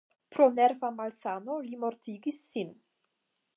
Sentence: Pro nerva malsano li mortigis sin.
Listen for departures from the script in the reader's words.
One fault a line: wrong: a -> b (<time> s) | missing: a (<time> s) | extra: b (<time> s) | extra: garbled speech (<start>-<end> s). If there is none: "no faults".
no faults